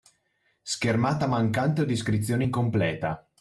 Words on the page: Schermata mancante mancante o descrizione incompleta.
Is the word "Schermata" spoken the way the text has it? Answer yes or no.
yes